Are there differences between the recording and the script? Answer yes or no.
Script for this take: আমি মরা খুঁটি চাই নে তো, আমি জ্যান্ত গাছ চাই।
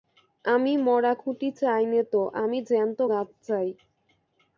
no